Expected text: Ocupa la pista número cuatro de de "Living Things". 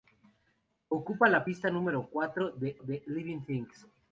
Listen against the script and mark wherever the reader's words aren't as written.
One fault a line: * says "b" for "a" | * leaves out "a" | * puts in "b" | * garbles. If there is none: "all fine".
all fine